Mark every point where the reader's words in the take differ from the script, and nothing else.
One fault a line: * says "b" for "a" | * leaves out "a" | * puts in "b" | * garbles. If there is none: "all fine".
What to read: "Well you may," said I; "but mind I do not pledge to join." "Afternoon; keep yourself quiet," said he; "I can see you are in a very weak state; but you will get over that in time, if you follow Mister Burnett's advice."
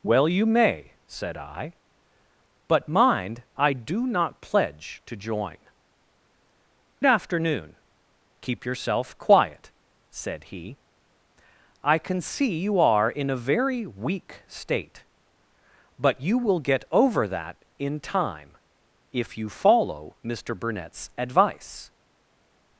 all fine